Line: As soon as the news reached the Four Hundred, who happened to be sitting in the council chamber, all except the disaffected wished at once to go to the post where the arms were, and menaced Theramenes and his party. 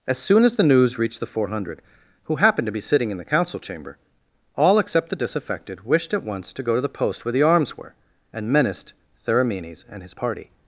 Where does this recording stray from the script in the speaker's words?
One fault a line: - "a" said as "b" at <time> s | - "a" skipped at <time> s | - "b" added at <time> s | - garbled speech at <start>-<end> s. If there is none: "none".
none